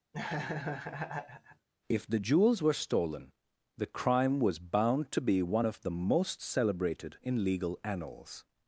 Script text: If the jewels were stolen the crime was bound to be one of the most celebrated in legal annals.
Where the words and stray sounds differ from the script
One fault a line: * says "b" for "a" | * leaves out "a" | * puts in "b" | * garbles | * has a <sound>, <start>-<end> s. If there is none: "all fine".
* has a laugh, 0.1-1.7 s